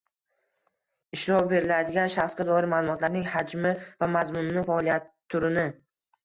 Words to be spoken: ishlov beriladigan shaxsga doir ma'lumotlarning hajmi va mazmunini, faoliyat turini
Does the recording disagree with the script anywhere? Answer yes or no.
no